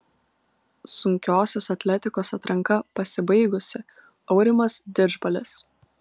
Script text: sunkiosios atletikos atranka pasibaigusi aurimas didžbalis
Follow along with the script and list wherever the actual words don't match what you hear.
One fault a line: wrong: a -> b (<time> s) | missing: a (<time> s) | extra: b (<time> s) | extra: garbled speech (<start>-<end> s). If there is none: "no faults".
no faults